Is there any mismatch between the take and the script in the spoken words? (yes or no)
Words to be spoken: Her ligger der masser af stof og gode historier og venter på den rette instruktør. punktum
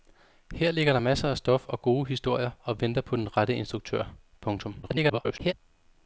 yes